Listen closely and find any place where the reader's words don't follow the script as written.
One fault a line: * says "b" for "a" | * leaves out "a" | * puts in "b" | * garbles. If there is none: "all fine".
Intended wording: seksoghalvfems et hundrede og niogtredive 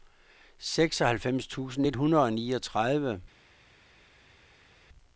* puts in "tusind"